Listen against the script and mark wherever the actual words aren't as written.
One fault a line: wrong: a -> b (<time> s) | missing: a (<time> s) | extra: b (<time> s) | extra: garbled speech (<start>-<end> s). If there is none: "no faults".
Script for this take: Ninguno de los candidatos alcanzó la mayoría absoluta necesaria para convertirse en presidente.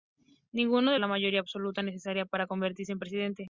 missing: los candidatos alcanzó (1.0 s)